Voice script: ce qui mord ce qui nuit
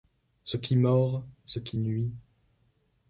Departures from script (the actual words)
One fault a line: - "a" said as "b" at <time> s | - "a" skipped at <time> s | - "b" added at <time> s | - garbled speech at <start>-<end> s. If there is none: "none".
none